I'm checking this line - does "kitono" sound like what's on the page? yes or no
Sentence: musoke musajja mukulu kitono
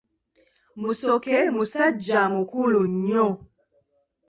no